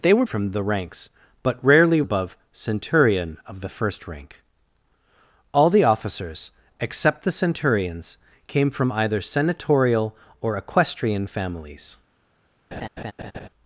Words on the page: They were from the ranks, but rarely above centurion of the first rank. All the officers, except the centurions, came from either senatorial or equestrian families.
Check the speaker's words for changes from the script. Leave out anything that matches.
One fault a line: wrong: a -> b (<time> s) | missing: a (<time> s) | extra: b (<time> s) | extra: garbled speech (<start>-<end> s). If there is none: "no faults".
no faults